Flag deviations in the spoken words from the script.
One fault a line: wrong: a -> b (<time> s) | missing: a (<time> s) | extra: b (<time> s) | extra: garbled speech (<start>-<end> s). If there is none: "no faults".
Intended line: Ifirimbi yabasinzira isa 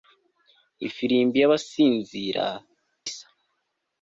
no faults